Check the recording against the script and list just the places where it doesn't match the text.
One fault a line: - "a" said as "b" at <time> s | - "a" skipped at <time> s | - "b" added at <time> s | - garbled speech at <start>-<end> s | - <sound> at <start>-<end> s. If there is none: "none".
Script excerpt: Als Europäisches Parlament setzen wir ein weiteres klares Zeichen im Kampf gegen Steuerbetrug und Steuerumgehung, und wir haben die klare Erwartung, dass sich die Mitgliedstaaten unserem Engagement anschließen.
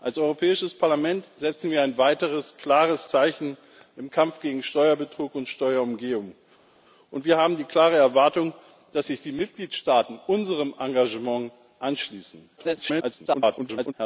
- garbled speech at 12.6-13.9 s